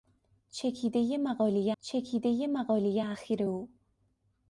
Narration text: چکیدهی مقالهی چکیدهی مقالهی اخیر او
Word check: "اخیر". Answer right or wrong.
right